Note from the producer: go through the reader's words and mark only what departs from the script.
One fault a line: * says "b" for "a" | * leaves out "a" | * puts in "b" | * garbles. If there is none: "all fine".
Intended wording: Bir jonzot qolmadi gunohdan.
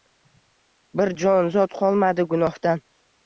all fine